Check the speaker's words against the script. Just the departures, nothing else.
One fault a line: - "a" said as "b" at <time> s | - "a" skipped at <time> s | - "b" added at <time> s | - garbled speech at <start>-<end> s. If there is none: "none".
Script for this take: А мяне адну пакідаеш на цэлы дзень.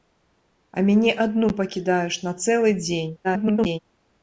- garbled speech at 3.2-3.8 s